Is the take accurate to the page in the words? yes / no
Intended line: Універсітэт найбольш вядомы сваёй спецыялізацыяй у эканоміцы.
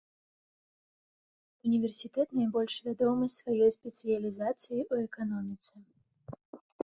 yes